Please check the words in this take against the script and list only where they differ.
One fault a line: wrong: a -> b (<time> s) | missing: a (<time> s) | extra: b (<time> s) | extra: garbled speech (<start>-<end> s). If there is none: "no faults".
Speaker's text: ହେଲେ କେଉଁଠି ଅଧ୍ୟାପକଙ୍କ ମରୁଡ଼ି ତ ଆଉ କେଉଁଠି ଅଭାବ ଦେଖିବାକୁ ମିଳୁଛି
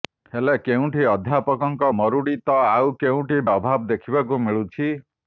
no faults